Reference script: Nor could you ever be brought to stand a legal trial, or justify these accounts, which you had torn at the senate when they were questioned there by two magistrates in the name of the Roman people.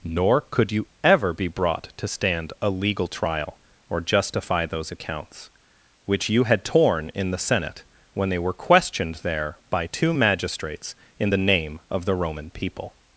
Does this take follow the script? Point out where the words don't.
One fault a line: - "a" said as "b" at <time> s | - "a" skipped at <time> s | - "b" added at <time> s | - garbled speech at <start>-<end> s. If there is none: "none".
- "these" said as "those" at 4.7 s
- "at" said as "in" at 7.1 s